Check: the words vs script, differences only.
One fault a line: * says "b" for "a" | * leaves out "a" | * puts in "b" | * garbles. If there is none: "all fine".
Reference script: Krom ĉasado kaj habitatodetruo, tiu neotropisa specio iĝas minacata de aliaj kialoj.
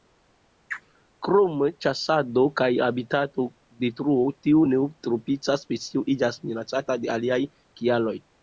all fine